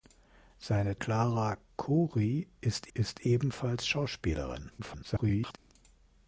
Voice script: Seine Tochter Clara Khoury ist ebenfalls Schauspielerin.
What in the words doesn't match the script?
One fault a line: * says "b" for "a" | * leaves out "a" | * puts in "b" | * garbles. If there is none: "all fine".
* leaves out "Tochter"
* puts in "ist"
* garbles